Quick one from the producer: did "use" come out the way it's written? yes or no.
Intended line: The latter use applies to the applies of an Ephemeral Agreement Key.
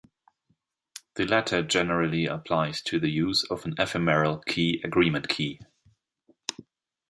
no